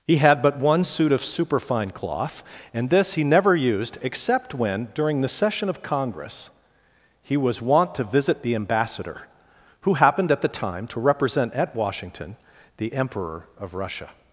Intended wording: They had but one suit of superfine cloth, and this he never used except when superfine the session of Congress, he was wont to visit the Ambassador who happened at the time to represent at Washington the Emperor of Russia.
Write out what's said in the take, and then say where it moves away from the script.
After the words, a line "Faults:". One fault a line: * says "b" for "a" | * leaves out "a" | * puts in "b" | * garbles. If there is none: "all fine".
He had but one suit of superfine cloth, and this he never used except when during the session of Congress, he was wont to visit the Ambassador who happened at the time to represent at Washington the Emperor of Russia.
Faults:
* says "He" for "They"
* says "during" for "superfine"